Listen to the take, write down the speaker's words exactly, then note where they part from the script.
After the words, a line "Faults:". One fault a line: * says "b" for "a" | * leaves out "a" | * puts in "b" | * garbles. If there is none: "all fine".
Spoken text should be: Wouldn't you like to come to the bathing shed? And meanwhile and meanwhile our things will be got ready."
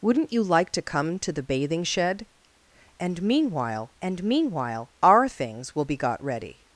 Wouldn't you like to come to the bathing shed? And meanwhile and meanwhile our things will be got ready."
Faults:
all fine